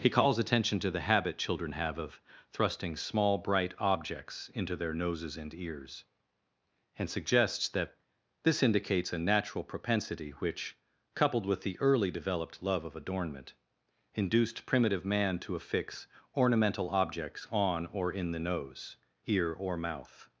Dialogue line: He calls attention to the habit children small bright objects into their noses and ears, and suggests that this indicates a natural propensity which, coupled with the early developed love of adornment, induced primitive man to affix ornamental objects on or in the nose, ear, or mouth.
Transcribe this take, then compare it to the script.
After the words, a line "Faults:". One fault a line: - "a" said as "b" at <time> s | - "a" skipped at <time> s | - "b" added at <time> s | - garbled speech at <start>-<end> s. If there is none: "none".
He calls attention to the habit children have of thrusting small bright objects into their noses and ears, and suggests that this indicates a natural propensity which, coupled with the early developed love of adornment, induced primitive man to affix ornamental objects on or in the nose, ear, or mouth.
Faults:
- "have of thrusting" added at 1.7 s